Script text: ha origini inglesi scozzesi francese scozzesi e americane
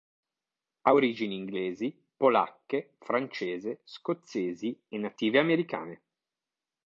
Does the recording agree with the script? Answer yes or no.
no